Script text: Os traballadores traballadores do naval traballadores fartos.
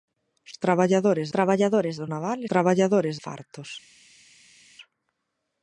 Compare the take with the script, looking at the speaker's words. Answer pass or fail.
pass